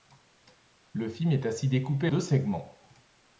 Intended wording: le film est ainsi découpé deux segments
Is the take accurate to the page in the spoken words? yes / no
yes